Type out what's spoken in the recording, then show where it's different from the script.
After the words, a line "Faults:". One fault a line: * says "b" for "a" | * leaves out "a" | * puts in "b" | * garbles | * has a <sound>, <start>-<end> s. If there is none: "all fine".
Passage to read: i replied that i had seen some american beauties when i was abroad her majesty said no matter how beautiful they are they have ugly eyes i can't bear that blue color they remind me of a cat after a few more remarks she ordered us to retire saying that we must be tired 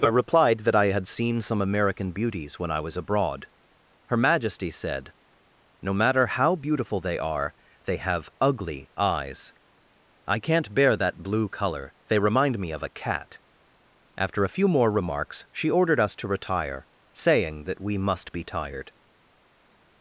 i replied that i had seen some american beauties when i was abroad her majesty said no matter how beautiful they are they have ugly eyes i can't bear that blue color they remind me of a cat after a few more remarks she ordered us to retire saying that we must be tired
Faults:
all fine